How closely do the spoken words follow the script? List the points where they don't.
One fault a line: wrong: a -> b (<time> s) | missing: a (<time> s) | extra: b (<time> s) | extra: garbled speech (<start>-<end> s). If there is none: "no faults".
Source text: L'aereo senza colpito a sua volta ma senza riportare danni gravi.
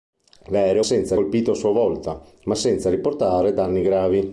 no faults